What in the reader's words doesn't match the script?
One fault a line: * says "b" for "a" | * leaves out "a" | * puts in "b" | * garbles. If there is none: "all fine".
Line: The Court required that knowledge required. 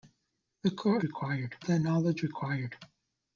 all fine